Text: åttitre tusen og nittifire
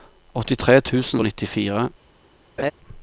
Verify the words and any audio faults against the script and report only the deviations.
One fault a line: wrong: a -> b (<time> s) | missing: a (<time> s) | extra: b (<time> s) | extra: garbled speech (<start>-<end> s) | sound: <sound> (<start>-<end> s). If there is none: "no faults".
sound: laugh (2.6-2.7 s)